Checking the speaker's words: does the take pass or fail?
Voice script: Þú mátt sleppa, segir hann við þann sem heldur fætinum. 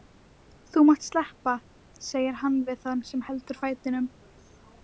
pass